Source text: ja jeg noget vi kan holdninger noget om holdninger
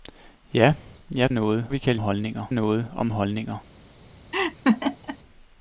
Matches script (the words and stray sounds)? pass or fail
fail